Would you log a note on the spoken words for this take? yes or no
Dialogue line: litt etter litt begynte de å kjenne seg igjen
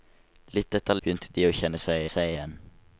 yes